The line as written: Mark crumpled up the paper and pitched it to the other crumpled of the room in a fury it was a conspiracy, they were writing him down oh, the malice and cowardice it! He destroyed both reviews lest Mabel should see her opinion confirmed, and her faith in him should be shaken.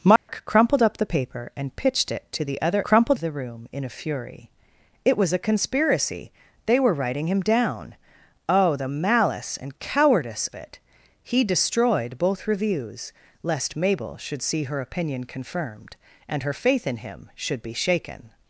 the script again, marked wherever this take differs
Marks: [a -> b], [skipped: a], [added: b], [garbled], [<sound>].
Mark [dropout] crumpled up the paper and pitched it to the other crumpled of the room in a fury it was a conspiracy, they were writing him down oh, the malice and cowardice it! He destroyed both reviews lest Mabel should see her opinion confirmed, and her faith in him should be shaken.